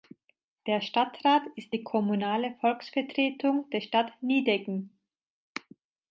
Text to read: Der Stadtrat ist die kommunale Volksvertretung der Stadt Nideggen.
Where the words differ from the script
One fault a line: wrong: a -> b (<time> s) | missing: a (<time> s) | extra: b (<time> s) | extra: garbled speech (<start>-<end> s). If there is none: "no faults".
no faults